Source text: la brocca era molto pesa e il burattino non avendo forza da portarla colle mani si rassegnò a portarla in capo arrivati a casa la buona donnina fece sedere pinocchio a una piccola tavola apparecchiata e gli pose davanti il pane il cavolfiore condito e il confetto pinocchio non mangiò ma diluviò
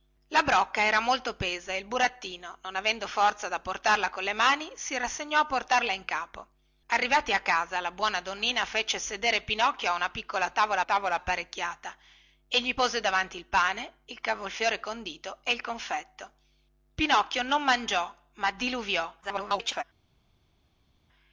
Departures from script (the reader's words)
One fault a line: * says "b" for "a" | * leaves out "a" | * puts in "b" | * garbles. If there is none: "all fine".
* puts in "tavola"
* garbles